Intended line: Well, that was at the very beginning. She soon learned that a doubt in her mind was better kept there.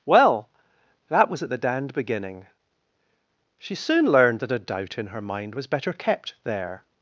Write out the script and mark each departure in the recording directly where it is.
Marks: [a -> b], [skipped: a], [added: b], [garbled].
Well, that was at the [very -> dand] beginning. She soon learned that a doubt in her mind was better kept there.